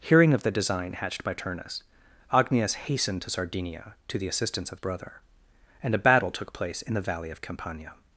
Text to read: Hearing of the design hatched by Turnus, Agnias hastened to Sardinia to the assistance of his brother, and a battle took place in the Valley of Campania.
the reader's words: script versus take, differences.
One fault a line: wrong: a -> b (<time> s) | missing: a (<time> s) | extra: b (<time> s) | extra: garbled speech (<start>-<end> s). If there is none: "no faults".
missing: his (4.8 s)